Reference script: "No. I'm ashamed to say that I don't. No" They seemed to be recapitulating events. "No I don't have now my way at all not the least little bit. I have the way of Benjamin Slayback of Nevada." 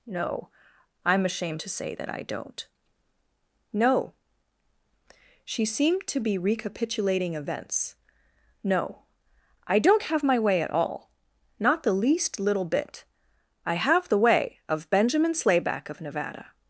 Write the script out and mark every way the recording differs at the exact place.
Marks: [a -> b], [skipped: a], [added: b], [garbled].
"No. I'm ashamed to say that I don't. No" [They -> She] seemed to be recapitulating events. "No I don't have [skipped: now] my way at all not the least little bit. I have the way of Benjamin Slayback of Nevada."